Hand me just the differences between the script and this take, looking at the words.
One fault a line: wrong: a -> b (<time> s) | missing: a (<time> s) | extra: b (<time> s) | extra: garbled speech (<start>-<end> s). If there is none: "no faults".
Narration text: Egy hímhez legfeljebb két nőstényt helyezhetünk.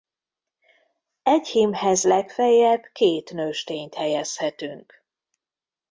no faults